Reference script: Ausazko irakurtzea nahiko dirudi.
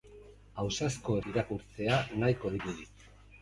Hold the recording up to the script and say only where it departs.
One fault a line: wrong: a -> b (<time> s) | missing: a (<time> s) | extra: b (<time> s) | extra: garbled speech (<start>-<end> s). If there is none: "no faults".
no faults